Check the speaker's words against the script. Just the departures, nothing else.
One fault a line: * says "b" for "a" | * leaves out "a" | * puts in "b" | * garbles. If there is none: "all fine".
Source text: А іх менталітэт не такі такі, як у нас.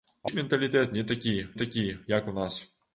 all fine